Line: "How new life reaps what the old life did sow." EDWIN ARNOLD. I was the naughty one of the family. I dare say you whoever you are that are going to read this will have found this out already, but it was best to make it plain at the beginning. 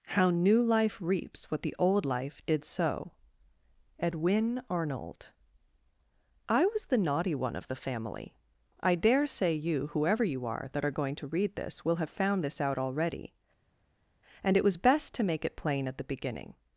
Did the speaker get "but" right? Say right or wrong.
wrong